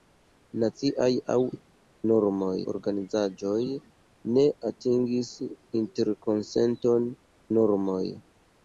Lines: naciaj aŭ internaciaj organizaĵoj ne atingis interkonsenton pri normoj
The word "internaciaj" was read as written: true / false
false